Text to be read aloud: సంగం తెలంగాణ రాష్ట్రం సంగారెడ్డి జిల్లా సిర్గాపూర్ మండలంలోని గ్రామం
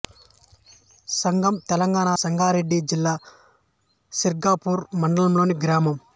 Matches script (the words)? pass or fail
fail